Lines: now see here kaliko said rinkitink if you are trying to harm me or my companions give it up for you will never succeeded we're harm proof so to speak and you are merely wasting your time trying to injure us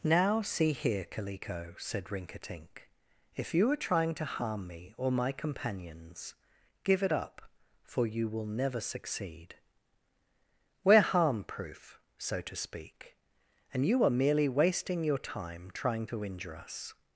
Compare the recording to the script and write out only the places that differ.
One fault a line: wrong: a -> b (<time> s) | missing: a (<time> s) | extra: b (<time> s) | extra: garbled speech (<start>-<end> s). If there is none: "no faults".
wrong: succeeded -> succeed (8.8 s)